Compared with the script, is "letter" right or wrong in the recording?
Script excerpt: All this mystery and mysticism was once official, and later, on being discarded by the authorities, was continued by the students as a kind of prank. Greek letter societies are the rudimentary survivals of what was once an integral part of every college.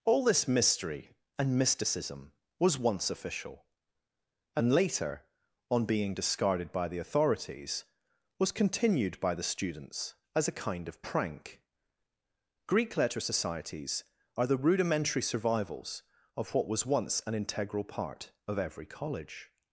right